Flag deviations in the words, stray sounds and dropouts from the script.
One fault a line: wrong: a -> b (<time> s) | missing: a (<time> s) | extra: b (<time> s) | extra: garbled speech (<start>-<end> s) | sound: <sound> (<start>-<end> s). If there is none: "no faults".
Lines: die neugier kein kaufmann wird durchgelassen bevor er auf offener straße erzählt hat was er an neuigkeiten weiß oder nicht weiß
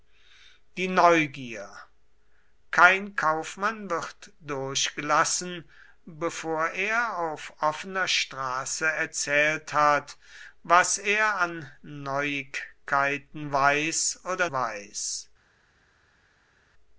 missing: nicht (14.5 s)